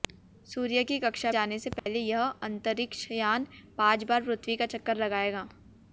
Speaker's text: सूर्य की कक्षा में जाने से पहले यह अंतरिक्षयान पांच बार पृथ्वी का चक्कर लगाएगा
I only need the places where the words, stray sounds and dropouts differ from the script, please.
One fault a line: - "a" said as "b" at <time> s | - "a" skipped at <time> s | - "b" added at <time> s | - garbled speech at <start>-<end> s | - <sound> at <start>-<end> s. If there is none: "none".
- "में" skipped at 1.3 s
- dropout at 1.8-1.9 s